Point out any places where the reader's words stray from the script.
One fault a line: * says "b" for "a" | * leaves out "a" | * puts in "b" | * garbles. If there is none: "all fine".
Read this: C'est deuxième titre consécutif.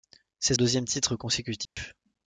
all fine